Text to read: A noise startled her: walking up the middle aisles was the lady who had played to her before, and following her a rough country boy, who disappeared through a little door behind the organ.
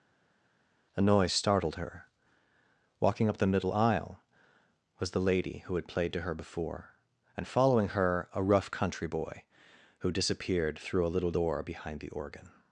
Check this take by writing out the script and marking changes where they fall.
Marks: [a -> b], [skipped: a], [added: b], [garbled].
A noise startled her: walking up the middle [aisles -> aisle] was the lady who had played to her before, and following her a rough country boy, who disappeared through a little door behind the organ.